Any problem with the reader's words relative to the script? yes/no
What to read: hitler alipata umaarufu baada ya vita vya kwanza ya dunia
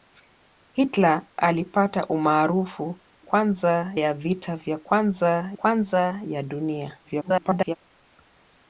yes